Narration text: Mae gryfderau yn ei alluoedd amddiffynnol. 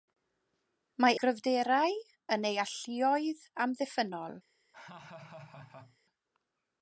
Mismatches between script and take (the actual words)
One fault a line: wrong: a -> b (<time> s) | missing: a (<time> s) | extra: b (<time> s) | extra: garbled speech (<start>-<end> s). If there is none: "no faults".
no faults